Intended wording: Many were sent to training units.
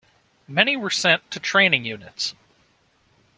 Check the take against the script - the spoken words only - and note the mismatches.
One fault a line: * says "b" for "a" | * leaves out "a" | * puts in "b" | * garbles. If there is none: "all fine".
all fine